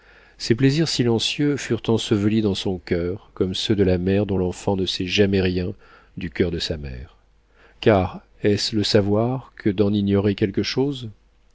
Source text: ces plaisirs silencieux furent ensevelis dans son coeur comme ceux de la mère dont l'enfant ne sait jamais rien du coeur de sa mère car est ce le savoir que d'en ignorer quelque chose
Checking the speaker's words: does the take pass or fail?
pass